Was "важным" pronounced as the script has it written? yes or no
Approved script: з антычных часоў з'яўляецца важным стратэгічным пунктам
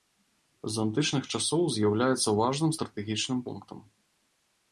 yes